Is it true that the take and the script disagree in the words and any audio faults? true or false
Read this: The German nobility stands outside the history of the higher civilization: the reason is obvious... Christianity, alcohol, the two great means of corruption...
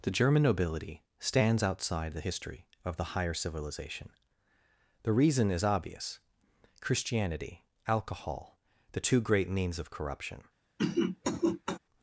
true